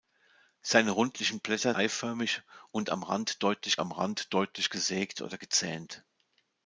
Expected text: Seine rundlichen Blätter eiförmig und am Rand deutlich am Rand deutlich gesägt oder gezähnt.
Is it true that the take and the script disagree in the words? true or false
false